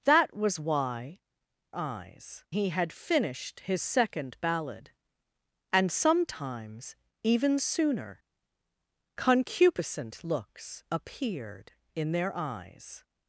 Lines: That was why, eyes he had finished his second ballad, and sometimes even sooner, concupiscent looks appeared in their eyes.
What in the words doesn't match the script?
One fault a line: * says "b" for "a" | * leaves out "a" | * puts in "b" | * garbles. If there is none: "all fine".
all fine